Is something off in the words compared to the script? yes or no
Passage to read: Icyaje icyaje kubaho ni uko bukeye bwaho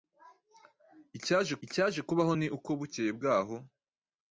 no